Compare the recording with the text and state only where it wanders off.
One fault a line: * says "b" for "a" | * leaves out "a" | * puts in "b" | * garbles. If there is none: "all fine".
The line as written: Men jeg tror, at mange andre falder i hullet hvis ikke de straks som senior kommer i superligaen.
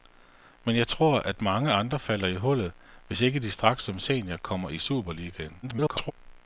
* garbles